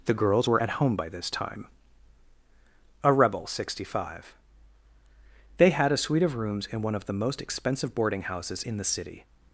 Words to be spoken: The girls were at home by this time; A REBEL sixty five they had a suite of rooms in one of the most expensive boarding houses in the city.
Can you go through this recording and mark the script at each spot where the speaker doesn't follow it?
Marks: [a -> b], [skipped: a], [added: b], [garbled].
The girls were at home by this time; A REBEL sixty five they had a suite of rooms in one of the most expensive boarding houses in the city.